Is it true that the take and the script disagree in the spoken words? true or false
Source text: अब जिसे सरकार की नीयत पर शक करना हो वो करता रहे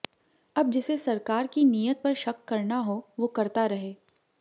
false